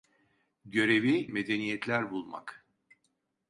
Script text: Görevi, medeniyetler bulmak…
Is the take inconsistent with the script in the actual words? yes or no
no